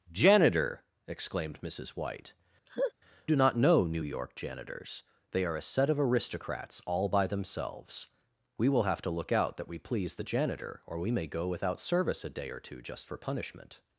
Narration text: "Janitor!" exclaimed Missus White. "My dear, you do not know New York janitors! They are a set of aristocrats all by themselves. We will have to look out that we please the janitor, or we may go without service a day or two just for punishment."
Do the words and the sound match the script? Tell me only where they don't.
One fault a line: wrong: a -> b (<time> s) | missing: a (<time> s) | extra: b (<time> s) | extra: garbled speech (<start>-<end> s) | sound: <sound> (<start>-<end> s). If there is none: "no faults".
missing: My dear you (2.3 s)
sound: laugh (2.7-2.9 s)